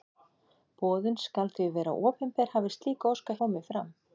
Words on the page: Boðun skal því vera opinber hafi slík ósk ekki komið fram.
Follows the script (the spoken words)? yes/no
no